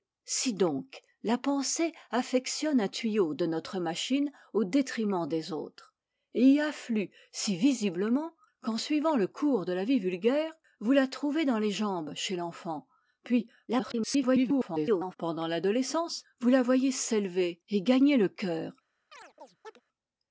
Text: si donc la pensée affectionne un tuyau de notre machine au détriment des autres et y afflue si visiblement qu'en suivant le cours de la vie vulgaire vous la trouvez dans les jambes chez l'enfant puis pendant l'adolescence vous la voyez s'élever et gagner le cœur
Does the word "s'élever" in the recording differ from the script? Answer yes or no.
no